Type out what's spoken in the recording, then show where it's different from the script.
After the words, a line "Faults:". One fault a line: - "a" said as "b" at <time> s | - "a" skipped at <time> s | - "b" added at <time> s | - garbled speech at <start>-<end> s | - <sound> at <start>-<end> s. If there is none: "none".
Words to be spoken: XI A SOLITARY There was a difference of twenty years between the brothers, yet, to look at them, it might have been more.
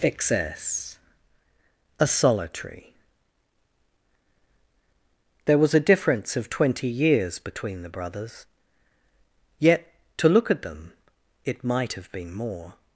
Excess A SOLITARY There was a difference of twenty years between the brothers, yet, to look at them, it might have been more.
Faults:
- "XI" said as "Excess" at 0.0 s